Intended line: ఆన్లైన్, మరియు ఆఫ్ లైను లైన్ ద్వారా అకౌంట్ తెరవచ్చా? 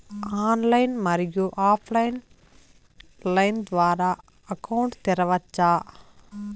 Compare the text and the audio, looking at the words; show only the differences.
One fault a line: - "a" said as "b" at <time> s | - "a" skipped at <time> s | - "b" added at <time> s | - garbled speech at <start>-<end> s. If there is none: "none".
none